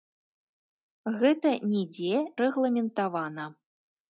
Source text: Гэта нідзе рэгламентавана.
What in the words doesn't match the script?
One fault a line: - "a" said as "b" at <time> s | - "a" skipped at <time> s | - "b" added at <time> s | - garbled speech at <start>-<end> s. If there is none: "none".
none